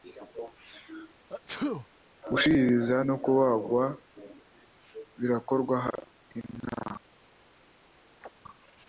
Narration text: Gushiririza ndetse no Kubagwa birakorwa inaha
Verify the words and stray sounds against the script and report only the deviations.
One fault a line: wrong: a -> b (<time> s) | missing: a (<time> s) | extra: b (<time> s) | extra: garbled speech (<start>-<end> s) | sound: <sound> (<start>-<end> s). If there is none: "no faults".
sound: sneeze (1.3-1.9 s)
missing: ndetse (3.0 s)
sound: chirp (8.2-8.3 s)